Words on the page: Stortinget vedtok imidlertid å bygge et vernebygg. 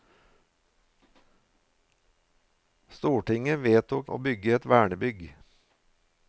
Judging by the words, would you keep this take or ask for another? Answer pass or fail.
fail